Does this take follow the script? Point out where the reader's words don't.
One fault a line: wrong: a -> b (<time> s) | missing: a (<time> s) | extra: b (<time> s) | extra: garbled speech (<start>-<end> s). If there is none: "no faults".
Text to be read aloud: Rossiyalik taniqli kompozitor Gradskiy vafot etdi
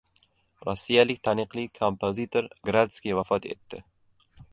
no faults